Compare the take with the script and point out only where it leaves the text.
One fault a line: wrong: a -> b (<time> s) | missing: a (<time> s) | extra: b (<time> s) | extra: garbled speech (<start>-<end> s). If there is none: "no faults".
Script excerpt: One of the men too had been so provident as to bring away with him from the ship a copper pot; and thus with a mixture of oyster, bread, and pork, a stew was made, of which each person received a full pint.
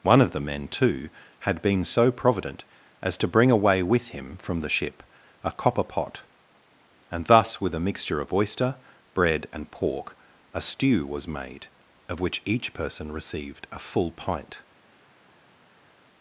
no faults